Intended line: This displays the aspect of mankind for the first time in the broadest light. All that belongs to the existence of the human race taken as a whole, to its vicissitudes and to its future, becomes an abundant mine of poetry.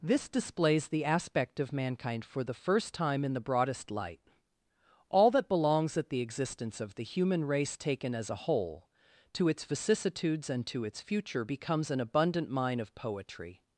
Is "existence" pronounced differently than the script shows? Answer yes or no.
no